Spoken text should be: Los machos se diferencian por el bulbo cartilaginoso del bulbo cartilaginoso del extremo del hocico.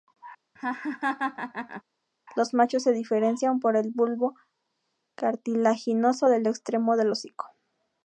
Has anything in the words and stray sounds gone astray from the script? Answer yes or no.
yes